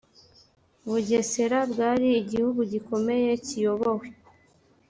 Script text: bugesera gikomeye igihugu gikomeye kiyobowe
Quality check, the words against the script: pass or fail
fail